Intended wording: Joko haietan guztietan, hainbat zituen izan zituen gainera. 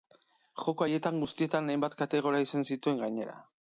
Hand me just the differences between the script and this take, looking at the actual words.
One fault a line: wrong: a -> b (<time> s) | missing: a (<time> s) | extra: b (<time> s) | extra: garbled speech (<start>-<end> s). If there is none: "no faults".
wrong: zituen -> kategoria (2.1 s)